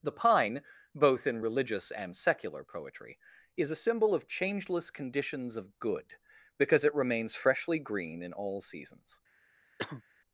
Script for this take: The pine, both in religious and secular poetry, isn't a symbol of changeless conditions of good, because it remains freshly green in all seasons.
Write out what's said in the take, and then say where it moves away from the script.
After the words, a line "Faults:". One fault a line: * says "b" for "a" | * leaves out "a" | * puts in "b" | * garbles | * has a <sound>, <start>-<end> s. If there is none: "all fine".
The pine, both in religious and secular poetry, is a symbol of changeless conditions of good, because it remains freshly green in all seasons.
Faults:
* says "is" for "isn't"
* has a cough, 9.8-10.0 s